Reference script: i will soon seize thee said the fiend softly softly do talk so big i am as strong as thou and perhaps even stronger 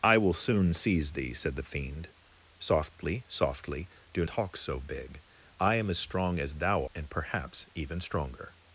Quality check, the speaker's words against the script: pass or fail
pass